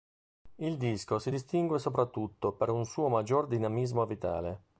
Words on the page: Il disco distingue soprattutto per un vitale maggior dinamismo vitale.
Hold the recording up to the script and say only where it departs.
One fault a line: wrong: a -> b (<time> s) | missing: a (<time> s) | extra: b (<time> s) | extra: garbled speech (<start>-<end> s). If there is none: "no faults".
extra: si (1.2 s)
wrong: vitale -> suo (2.8 s)